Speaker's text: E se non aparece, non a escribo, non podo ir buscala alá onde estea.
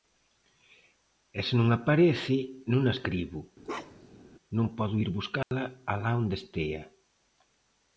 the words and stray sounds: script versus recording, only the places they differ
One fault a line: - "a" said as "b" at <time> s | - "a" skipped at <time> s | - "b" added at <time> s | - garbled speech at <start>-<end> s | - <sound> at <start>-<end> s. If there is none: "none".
- bark at 3.6-4.2 s
- dropout at 5.4-5.5 s